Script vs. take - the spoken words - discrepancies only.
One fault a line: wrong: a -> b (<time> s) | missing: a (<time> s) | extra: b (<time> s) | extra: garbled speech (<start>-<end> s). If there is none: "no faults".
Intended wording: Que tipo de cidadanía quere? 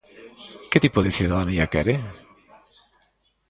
no faults